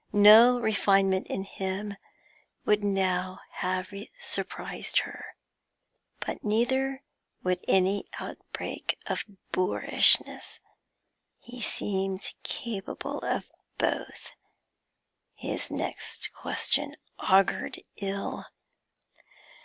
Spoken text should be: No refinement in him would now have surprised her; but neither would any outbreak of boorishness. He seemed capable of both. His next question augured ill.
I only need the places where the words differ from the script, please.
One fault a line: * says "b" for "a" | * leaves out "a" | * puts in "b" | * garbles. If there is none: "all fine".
all fine